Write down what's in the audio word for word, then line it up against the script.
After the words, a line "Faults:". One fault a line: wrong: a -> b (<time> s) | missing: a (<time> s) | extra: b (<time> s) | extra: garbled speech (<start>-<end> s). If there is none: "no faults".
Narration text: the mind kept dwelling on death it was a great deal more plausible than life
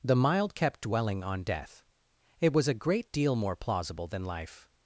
the mild kept dwelling on death it was a great deal more plausible than life
Faults:
wrong: mind -> mild (0.1 s)